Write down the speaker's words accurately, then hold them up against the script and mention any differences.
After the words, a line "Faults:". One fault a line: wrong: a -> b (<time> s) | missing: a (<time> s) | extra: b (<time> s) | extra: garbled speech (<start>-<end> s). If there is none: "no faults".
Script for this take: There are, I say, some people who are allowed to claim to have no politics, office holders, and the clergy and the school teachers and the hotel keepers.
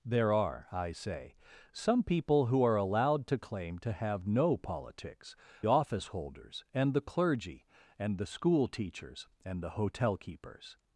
There are, I say, some people who are allowed to claim to have no politics, office holders, and the clergy and the school teachers and the hotel keepers.
Faults:
no faults